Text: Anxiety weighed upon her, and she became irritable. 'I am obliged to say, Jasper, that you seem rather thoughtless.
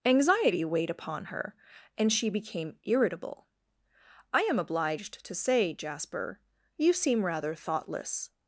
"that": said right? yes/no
no